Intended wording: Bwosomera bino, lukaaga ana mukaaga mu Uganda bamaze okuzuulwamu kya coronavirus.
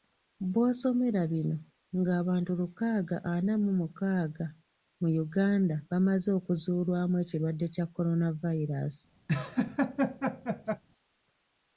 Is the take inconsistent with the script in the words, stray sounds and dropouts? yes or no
yes